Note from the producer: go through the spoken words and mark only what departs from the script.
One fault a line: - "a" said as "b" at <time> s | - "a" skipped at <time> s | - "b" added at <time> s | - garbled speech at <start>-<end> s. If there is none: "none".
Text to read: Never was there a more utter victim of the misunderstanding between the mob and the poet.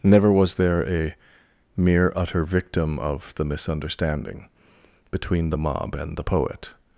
- "more" said as "mere" at 1.8 s